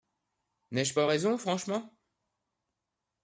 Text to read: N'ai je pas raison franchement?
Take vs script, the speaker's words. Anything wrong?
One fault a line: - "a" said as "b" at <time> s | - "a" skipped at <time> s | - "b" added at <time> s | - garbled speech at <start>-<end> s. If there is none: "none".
none